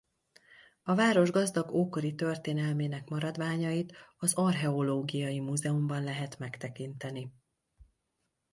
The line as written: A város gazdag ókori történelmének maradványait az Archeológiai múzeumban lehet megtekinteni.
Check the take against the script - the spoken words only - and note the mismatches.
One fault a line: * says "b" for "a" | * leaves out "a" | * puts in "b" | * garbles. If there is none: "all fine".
all fine